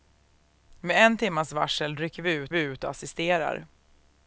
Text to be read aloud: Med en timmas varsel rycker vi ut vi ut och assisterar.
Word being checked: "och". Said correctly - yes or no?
yes